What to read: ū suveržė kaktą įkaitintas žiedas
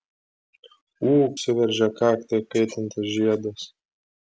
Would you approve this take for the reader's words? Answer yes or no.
yes